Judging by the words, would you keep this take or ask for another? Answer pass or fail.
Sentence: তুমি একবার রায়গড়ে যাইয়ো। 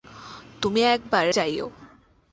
fail